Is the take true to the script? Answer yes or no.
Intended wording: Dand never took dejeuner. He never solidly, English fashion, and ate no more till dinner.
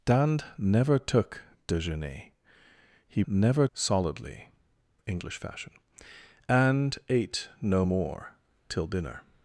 yes